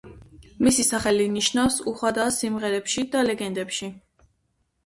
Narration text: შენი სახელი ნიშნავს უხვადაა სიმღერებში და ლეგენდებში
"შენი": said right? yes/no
no